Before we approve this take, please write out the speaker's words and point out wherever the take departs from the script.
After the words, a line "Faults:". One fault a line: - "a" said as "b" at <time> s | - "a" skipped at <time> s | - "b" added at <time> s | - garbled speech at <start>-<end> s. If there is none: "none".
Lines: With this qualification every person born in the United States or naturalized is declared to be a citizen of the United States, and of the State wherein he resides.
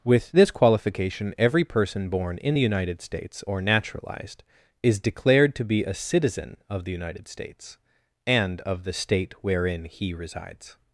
With this qualification every person born in the United States or naturalized is declared to be a citizen of the United States, and of the State wherein he resides.
Faults:
none